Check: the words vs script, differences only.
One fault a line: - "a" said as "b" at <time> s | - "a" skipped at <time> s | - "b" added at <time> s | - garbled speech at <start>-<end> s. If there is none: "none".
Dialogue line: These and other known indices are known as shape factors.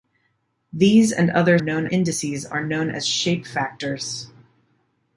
none